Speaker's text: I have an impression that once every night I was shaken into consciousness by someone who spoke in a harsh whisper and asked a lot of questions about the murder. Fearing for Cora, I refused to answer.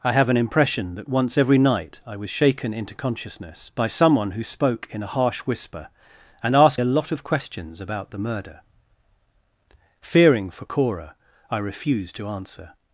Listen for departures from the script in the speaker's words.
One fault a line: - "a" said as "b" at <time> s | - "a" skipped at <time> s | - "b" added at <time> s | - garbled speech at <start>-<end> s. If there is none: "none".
none